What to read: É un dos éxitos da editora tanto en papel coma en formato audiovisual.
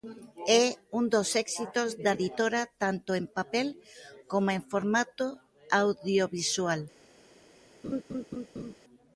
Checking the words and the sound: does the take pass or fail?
fail